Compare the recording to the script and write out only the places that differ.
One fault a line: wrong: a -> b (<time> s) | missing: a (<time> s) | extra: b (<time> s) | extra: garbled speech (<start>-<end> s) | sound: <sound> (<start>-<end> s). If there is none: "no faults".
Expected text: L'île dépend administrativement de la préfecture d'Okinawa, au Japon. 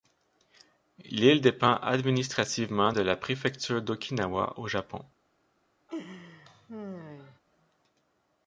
sound: laugh (5.9-7.4 s)